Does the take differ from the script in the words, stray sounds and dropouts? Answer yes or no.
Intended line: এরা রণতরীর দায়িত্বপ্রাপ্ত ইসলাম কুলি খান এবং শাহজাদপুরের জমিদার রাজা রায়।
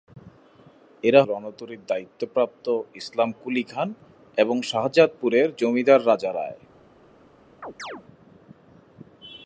yes